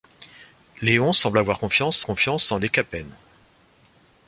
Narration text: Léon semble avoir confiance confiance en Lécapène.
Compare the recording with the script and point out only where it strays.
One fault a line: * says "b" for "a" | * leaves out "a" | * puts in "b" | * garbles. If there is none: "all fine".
all fine